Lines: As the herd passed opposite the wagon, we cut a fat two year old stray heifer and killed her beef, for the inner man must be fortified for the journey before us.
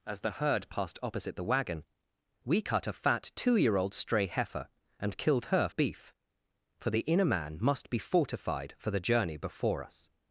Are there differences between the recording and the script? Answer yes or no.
no